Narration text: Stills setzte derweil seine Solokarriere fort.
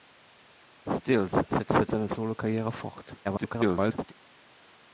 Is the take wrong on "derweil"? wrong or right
wrong